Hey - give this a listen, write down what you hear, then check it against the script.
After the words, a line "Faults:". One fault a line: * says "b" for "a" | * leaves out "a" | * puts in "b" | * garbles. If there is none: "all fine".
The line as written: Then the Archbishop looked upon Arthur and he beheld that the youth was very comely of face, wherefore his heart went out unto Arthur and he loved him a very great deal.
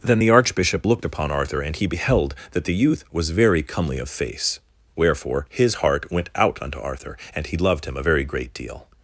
Then the Archbishop looked upon Arthur and he beheld that the youth was very comely of face, wherefore his heart went out unto Arthur and he loved him a very great deal.
Faults:
all fine